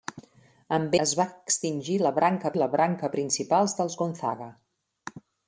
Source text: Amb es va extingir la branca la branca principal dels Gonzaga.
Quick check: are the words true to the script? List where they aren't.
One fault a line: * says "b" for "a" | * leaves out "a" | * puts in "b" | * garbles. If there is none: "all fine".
all fine